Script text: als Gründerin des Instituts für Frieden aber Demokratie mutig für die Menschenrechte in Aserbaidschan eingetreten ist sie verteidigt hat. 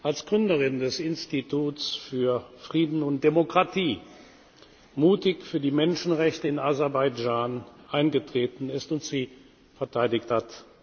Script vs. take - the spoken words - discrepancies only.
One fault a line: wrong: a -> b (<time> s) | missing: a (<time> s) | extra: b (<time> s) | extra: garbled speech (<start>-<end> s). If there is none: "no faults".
wrong: aber -> und (3.0 s)
extra: und (8.9 s)